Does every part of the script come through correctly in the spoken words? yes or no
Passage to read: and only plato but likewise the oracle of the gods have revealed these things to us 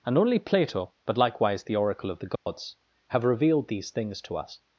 yes